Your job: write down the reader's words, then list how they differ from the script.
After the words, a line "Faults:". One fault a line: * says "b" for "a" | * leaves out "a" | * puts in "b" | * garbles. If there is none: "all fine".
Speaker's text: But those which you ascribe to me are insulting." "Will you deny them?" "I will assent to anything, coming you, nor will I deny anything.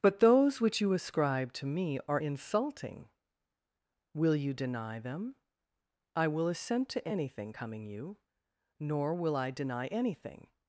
But those which you ascribe to me are insulting." "Will you deny them?" "I will assent to anything, coming you, nor will I deny anything.
Faults:
all fine